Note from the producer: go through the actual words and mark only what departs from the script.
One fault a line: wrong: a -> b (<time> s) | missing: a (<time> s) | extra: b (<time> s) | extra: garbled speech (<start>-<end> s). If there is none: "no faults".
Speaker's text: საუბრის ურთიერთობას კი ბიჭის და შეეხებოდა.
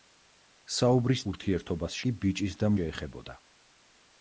no faults